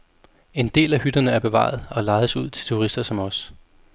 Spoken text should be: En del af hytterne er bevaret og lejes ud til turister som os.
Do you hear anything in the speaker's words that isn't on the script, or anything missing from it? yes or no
no